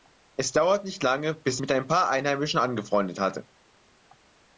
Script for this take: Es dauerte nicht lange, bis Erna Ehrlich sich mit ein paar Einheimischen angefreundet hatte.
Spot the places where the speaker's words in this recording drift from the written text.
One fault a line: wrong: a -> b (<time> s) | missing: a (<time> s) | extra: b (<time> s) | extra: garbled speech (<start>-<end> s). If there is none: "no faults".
missing: Erna Ehrlich sich (1.6 s)